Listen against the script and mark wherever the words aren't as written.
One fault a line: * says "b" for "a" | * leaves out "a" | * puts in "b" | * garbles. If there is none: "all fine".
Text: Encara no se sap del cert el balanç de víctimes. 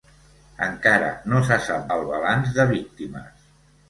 * leaves out "del cert"